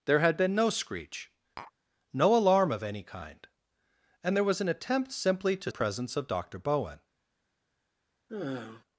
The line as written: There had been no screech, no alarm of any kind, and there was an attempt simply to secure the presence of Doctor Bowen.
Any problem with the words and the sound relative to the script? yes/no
yes